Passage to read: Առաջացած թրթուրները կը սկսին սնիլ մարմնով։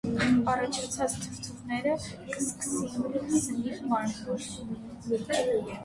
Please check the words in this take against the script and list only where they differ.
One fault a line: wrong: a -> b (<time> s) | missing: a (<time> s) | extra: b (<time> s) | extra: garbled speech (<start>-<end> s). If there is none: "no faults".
no faults